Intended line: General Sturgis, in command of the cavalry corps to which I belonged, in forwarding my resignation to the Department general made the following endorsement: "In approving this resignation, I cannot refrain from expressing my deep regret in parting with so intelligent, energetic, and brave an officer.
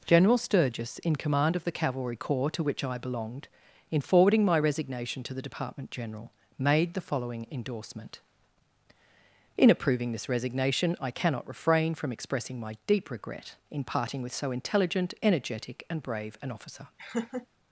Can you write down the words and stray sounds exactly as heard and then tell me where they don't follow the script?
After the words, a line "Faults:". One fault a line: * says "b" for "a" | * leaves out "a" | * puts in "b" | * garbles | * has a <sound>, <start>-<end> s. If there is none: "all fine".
General Sturgis, in command of the cavalry corps to which I belonged, in forwarding my resignation to the Department general made the following endorsement: "In approving this resignation, I cannot refrain from expressing my deep regret in parting with so intelligent, energetic, and brave an officer.
Faults:
* has a laugh, 17.0-17.5 s